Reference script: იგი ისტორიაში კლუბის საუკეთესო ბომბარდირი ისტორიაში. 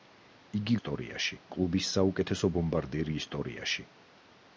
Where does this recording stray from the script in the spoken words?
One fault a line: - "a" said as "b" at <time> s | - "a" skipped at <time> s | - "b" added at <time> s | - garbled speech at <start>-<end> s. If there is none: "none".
none